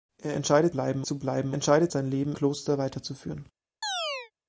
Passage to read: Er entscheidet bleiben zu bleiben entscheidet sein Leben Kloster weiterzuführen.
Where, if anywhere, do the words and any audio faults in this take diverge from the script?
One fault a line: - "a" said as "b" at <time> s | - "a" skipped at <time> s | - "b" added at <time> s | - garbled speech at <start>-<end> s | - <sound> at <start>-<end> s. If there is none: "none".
- chirp at 3.8-4.3 s